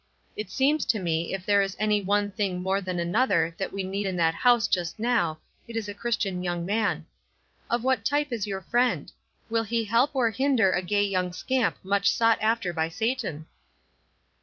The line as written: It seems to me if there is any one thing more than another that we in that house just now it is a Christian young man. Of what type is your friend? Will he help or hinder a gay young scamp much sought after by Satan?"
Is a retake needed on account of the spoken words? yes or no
yes